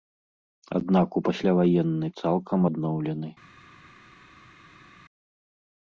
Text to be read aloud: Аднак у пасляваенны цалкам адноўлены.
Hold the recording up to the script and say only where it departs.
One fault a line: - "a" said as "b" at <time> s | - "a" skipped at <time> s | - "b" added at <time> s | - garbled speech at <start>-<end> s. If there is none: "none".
none